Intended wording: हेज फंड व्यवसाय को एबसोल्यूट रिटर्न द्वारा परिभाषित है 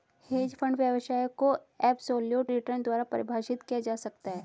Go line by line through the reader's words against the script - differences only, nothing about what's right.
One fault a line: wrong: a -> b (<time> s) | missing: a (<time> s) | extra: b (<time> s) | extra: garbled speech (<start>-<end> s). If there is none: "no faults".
extra: किया जा सकता (3.6 s)